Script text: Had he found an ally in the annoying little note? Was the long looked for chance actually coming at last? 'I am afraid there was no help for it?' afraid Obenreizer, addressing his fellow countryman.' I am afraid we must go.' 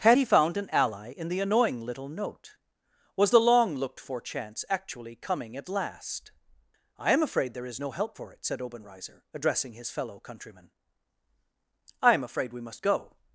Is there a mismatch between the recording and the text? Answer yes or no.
yes